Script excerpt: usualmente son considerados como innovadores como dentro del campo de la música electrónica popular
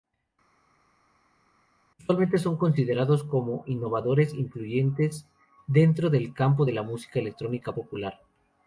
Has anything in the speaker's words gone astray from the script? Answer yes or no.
yes